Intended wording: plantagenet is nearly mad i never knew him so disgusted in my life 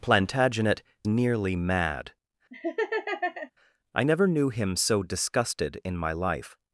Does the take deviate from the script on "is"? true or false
true